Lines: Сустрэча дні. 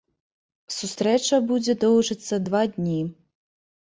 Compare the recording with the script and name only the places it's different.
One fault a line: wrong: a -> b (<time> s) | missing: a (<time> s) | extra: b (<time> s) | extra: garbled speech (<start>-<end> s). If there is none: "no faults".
extra: будзе доўжыцца два (1.5 s)